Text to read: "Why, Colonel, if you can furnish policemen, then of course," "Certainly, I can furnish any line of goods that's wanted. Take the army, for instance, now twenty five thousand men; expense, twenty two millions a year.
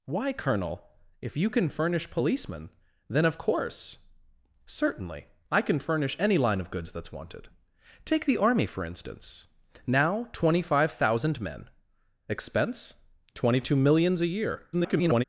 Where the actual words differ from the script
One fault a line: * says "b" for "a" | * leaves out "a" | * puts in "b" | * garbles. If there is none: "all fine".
* garbles